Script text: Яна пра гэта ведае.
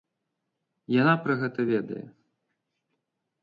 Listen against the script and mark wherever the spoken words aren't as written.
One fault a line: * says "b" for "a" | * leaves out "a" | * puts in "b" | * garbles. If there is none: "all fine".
all fine